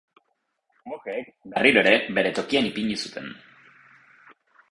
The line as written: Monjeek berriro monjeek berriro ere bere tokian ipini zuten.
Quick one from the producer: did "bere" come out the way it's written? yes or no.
yes